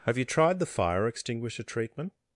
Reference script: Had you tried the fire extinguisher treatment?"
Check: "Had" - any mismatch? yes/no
yes